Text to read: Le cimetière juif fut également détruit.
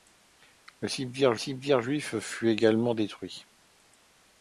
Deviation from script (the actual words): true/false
true